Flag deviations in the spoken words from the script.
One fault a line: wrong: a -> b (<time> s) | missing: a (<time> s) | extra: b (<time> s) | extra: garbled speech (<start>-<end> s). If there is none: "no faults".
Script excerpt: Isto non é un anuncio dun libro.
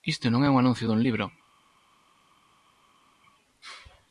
no faults